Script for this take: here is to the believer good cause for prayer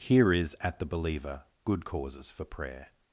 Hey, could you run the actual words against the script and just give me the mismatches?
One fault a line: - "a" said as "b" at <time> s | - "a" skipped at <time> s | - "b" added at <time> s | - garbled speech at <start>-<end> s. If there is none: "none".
- "to" said as "at" at 0.6 s
- "cause" said as "causes" at 1.8 s